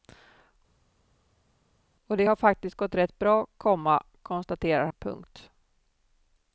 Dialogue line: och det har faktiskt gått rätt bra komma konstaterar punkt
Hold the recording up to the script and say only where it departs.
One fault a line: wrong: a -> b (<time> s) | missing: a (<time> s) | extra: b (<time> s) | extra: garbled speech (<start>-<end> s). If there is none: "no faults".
no faults